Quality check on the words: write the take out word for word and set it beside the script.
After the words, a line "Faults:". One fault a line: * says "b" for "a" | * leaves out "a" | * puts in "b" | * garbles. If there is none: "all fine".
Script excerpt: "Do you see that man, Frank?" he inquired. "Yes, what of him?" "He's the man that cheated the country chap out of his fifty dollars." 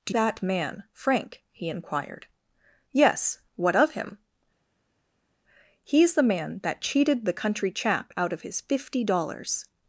"Do that man, Frank?" he inquired. "Yes, what of him?" "He's the man that cheated the country chap out of his fifty dollars."
Faults:
* leaves out "you see"